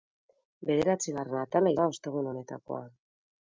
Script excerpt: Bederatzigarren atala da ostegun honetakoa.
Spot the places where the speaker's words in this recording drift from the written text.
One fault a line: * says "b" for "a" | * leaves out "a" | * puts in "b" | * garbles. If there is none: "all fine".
all fine